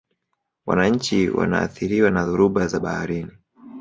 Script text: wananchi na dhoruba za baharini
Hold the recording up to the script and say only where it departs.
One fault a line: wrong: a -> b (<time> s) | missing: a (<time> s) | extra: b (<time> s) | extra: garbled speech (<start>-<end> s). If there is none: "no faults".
extra: wanaathiriwa (1.3 s)